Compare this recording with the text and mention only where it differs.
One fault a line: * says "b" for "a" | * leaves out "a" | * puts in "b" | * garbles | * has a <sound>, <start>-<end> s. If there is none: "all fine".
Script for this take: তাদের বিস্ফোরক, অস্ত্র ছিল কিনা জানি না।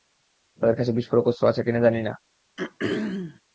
* puts in "কাছে"
* says "আছে" for "ছিল"
* has a throat clearing, 2.6-3.4 s